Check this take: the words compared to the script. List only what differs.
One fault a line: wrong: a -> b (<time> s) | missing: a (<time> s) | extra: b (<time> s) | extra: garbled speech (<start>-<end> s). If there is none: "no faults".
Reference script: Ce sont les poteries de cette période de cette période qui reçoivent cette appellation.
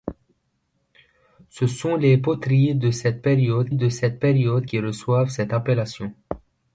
no faults